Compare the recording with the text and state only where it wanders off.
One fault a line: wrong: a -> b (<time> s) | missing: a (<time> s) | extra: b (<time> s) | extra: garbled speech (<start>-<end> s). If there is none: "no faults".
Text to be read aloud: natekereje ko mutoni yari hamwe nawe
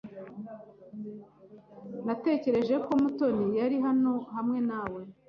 extra: hano (3.8 s)